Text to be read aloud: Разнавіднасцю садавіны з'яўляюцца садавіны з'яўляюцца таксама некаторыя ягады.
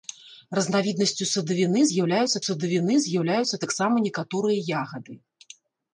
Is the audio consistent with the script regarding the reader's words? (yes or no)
yes